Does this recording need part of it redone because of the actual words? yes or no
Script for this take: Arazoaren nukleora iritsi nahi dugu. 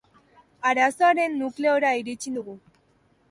yes